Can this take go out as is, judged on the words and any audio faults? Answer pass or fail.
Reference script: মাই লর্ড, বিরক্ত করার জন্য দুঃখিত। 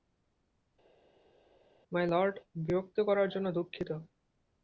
pass